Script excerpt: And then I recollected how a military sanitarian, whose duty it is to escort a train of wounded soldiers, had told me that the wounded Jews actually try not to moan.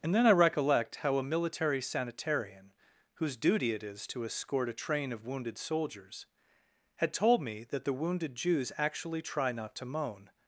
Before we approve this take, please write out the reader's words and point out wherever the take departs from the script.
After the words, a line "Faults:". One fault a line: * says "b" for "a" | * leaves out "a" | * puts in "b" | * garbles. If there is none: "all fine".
And then I recollect how a military sanitarian, whose duty it is to escort a train of wounded soldiers, had told me that the wounded Jews actually try not to moan.
Faults:
* says "recollect" for "recollected"